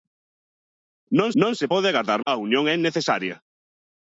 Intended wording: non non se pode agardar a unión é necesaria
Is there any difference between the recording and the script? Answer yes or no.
no